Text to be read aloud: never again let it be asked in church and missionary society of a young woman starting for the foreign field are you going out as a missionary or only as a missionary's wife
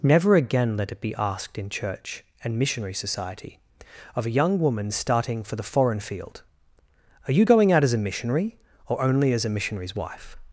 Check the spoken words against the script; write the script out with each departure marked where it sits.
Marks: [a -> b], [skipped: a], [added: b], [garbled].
never again let it be asked in church and missionary society of a young woman starting for the foreign field are you going out as a missionary or only as a missionary's wife